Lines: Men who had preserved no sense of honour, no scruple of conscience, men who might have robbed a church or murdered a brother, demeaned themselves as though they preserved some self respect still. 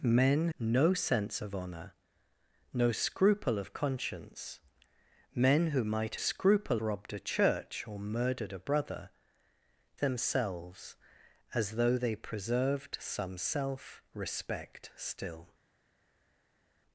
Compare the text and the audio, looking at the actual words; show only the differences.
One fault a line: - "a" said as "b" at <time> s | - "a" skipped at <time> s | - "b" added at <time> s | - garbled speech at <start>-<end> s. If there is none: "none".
- "who had preserved" skipped at 0.5 s
- "have" said as "scruple" at 6.1 s
- "demeaned" skipped at 9.1 s